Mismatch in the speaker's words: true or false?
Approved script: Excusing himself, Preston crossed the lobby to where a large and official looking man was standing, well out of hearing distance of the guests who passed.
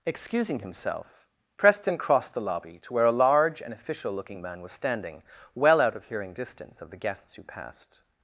false